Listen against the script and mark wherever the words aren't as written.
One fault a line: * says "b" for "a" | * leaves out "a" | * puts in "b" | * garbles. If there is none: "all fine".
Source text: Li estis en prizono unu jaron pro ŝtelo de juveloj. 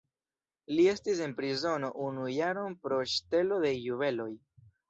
all fine